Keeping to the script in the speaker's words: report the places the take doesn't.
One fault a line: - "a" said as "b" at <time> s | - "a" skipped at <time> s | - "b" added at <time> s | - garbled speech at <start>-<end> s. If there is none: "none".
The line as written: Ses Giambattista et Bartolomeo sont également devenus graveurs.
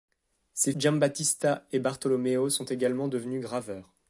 none